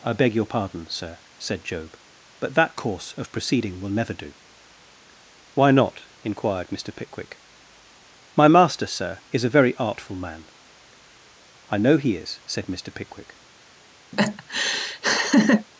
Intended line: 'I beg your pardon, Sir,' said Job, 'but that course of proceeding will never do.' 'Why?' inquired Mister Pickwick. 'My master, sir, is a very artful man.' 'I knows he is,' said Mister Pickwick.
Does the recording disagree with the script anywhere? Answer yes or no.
yes